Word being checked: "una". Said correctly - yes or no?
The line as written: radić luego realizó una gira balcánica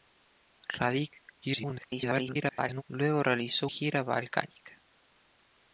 no